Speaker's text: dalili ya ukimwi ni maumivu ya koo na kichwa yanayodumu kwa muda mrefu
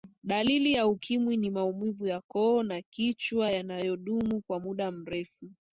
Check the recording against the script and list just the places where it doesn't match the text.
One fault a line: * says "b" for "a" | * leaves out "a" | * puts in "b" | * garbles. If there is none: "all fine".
all fine